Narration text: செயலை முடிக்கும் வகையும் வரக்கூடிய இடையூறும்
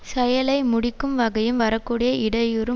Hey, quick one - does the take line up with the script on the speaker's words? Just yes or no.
yes